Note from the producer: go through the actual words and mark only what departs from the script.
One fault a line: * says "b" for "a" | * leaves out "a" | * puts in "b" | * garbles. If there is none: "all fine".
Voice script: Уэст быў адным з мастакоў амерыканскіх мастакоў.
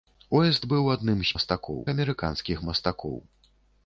all fine